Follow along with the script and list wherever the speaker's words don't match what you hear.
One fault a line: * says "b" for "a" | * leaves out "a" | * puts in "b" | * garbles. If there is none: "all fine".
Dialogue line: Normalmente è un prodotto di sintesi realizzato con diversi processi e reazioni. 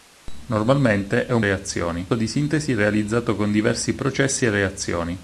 * says "reazioni" for "prodotto"